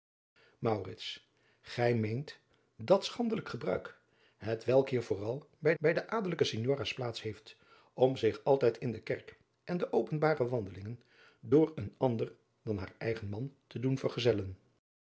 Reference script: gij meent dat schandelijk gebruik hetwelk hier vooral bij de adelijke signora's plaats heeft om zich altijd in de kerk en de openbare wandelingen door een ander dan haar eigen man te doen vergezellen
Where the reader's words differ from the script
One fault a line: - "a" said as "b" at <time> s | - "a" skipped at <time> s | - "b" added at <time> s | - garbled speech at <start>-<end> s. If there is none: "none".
- "bij" added at 5.8 s